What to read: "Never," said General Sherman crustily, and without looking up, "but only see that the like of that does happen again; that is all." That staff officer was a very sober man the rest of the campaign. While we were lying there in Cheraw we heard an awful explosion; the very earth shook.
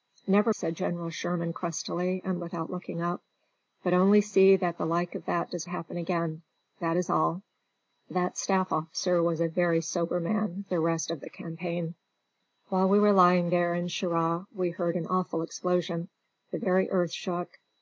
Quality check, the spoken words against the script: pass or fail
pass